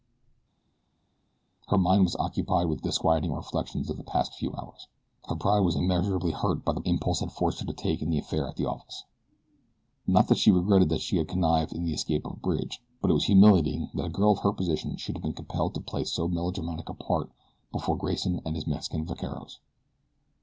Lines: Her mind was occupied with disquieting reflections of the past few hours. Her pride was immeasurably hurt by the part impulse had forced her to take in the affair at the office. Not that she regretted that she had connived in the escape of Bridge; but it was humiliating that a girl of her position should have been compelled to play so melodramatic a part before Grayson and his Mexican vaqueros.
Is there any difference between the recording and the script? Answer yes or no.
yes